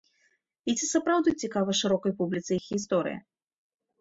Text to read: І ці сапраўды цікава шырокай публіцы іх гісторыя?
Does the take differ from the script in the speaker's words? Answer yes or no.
no